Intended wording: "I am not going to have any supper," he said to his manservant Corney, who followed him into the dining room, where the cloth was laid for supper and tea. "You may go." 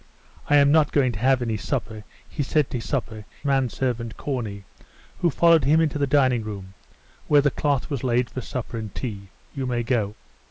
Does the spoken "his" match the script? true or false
false